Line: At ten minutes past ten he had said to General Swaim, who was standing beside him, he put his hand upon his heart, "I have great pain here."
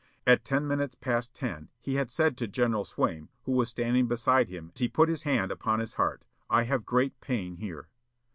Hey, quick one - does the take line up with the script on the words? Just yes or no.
yes